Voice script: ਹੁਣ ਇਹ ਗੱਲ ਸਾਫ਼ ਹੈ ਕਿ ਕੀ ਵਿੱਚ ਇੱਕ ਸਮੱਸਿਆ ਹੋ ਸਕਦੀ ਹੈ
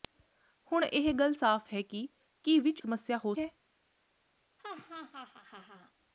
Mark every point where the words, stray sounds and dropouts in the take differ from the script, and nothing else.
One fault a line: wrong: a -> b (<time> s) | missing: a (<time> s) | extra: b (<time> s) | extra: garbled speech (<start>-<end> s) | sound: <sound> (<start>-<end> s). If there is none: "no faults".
missing: ਇੱਕ (2.8 s)
missing: ਸਕਦੀ (3.3 s)
sound: laugh (4.6-5.9 s)